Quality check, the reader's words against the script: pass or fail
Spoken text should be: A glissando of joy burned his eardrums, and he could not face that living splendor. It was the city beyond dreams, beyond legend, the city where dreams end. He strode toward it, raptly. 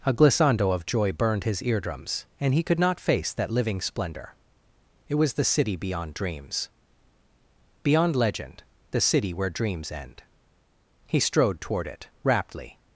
pass